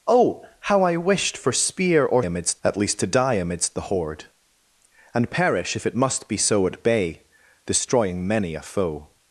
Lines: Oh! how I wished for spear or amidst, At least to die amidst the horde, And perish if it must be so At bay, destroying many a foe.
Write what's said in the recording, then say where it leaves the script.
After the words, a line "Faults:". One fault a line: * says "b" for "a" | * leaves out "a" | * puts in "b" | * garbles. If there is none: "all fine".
Oh! how I wished for spear or amidst, At least to die amidst the horde, And perish if it must be so At bay, destroying many a foe.
Faults:
all fine